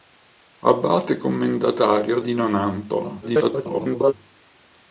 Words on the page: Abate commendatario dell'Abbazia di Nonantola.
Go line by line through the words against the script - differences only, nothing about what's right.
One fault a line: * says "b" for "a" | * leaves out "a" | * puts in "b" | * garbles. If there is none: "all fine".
* leaves out "dell'Abbazia"
* garbles